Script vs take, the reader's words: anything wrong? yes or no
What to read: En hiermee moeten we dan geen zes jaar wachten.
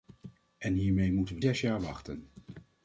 yes